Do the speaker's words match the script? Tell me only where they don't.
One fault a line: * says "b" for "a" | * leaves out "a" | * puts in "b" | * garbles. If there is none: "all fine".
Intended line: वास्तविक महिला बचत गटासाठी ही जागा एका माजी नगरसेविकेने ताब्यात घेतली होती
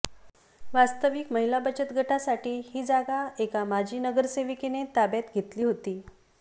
all fine